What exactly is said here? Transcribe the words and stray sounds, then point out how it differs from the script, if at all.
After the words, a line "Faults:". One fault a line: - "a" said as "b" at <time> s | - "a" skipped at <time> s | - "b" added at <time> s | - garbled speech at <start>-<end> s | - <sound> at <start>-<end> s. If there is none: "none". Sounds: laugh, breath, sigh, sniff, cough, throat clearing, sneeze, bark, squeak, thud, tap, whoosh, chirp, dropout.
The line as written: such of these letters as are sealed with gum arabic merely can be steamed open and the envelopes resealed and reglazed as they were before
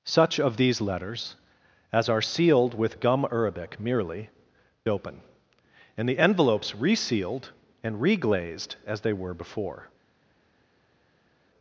such of these letters as are sealed with gum arabic merely open and the envelopes resealed and reglazed as they were before
Faults:
- "can be steamed" skipped at 4.3 s